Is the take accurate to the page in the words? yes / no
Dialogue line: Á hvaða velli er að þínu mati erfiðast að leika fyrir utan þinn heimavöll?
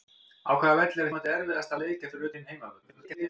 no